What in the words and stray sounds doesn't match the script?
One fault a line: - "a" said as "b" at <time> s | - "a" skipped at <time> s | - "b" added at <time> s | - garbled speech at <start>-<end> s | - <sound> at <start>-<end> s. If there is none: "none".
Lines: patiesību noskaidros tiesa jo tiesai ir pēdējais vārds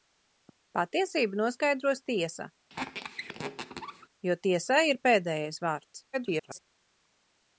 - squeak at 2.7-4.1 s
- garbled speech at 6.1-6.6 s